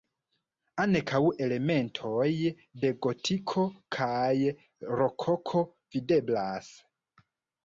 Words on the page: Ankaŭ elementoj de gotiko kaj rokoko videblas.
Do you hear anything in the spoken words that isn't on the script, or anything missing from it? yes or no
no